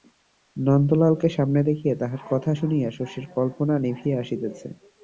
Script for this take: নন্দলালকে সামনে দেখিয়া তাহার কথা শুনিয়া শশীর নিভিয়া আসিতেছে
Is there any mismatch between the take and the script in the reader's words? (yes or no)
yes